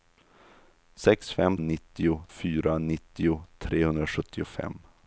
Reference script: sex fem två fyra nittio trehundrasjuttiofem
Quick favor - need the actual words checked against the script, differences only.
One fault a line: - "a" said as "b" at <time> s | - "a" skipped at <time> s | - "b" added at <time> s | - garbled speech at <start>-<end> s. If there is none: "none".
- "två" said as "nittio" at 1.6 s